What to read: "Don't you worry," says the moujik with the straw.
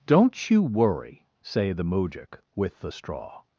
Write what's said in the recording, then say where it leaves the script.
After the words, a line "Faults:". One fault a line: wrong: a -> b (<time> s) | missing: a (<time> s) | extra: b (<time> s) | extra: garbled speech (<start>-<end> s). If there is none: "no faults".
"Don't you worry," say the moujik with the straw.
Faults:
wrong: says -> say (1.4 s)